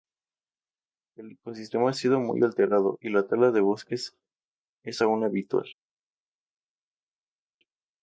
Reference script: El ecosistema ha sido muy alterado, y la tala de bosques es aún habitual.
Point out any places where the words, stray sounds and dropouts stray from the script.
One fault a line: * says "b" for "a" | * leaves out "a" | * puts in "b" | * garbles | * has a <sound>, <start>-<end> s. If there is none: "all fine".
all fine